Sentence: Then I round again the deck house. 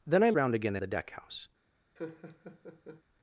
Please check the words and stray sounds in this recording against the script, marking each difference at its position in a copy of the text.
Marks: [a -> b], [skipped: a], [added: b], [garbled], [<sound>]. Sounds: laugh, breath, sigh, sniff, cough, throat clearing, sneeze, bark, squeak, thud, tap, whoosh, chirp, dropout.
Then I round again the deck house. [laugh]